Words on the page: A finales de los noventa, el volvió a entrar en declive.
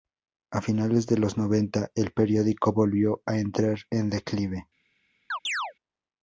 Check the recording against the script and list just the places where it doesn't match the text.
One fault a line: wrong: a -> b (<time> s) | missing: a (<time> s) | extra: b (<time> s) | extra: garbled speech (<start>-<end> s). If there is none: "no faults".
extra: periódico (2.1 s)